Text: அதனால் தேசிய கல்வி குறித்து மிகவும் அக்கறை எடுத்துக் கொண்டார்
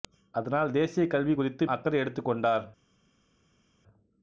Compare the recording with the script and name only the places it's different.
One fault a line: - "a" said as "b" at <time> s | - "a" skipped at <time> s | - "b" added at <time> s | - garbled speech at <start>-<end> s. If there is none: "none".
- "மிகவும்" skipped at 1.7 s